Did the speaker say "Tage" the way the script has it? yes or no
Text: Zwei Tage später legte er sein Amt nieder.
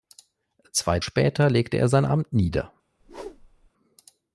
no